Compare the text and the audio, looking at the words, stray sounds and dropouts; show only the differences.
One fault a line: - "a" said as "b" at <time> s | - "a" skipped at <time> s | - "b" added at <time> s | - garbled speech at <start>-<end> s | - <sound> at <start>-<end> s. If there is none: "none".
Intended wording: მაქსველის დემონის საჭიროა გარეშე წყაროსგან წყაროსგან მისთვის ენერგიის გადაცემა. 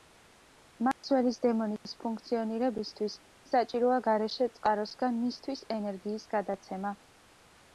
- dropout at 0.9-1.0 s
- "ფუნქციონირებისთვის" added at 2.0 s
- "წყაროსგან" skipped at 5.2 s